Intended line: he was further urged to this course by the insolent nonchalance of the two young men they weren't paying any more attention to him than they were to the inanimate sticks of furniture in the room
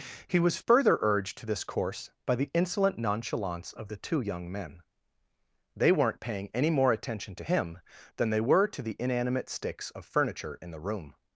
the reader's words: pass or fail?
pass